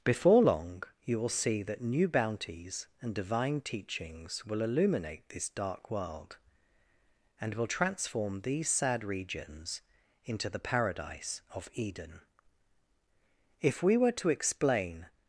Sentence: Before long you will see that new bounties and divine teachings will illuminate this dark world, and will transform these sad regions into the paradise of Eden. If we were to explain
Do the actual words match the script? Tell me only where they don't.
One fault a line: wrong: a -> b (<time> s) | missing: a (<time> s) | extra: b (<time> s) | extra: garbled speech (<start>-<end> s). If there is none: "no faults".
no faults